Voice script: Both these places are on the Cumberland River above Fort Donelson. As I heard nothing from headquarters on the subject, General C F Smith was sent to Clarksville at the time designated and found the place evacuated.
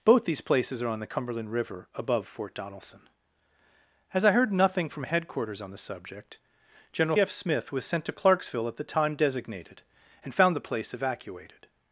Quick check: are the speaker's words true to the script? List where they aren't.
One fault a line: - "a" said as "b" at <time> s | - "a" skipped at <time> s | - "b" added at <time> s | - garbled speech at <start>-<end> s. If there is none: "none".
- "C" skipped at 7.2 s